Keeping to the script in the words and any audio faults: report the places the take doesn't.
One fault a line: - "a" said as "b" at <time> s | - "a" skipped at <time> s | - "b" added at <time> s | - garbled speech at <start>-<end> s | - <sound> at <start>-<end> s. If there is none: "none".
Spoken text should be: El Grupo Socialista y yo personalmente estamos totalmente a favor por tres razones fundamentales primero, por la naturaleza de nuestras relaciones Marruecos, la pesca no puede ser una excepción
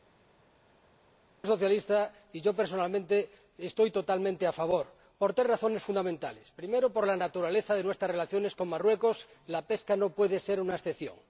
- "con" added at 8.5 s